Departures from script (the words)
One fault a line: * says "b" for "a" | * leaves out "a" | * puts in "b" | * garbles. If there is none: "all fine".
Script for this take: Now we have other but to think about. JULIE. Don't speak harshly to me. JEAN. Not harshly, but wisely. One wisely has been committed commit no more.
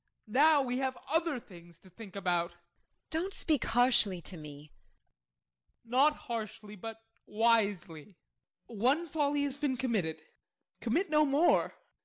* says "things" for "but"
* says "folly" for "wisely"